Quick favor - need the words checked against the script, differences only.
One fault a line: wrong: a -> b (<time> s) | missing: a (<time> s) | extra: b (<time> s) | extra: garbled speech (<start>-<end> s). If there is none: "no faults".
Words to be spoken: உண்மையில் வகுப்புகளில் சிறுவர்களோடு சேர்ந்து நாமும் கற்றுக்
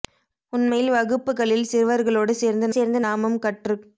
extra: சேர்ந்து (2.7 s)